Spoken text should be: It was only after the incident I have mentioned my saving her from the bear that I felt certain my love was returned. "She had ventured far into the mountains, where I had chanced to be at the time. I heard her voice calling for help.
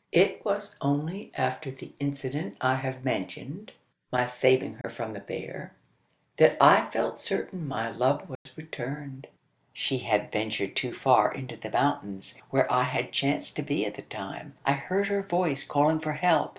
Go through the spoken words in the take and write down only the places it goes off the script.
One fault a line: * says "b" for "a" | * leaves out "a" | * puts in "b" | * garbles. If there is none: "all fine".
* puts in "too"